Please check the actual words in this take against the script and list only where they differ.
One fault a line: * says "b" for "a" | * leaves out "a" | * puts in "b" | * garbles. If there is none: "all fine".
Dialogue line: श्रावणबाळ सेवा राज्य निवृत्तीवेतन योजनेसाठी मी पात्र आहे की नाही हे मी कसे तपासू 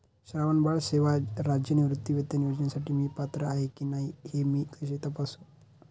all fine